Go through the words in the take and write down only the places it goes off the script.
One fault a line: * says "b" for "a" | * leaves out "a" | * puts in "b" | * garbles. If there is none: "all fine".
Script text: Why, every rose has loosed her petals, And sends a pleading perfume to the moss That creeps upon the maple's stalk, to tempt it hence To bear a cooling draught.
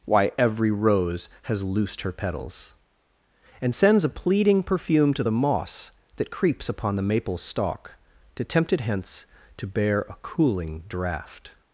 all fine